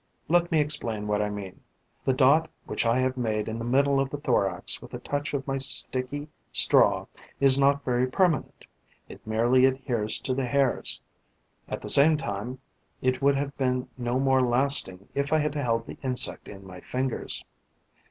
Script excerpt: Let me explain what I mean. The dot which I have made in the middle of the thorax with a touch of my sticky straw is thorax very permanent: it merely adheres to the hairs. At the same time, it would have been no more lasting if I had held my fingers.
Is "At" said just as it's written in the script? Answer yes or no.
yes